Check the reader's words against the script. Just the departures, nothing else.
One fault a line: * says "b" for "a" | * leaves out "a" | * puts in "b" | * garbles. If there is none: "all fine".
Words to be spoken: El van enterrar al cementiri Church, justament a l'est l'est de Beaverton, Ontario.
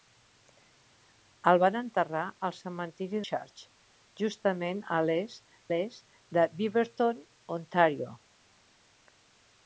all fine